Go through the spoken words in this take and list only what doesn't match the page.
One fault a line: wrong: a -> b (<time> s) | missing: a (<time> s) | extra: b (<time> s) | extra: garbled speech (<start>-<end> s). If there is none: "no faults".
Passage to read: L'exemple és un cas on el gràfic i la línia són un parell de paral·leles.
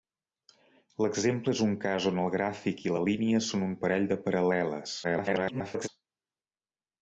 extra: garbled speech (5.0-5.9 s)